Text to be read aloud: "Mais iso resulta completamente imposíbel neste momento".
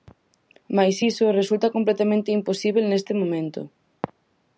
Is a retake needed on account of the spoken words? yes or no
no